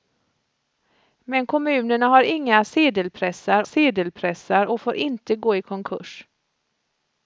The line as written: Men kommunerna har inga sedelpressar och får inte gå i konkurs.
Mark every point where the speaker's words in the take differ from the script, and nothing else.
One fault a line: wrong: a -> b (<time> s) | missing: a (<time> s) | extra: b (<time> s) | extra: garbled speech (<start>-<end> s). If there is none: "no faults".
extra: sedelpressar (3.6 s)